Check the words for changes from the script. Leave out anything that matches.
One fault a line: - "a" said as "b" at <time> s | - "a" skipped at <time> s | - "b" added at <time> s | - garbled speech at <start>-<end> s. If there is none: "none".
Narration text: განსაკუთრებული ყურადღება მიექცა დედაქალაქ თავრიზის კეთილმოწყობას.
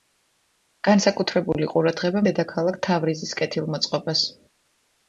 - "მიექცა" skipped at 2.2 s